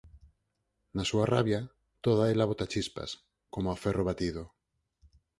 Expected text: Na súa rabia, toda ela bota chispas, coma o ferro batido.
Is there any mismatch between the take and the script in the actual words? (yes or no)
no